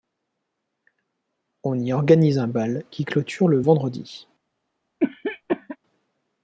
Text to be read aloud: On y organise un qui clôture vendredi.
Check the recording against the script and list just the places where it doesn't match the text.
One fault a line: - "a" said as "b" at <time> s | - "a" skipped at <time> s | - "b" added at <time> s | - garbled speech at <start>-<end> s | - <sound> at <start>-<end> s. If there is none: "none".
- "bal" added at 2.5 s
- "le" added at 3.5 s
- cough at 5.0-5.8 s